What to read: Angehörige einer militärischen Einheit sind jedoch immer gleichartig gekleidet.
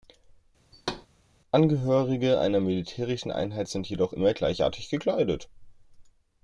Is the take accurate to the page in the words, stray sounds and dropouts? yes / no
no